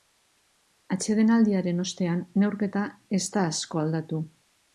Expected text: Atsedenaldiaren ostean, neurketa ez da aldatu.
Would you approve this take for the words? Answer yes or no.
no